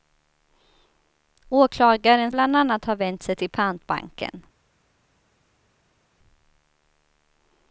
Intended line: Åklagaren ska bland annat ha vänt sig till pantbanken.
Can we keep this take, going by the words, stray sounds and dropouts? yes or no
no